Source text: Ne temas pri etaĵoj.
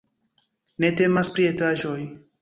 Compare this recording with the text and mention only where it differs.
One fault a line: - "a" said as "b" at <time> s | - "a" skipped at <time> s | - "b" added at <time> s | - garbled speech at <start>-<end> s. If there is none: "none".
none